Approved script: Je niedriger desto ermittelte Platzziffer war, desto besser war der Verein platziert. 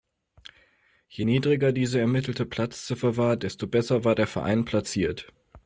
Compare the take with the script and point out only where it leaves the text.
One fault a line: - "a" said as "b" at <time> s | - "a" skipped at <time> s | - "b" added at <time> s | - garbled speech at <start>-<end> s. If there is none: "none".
- "desto" said as "diese" at 1.7 s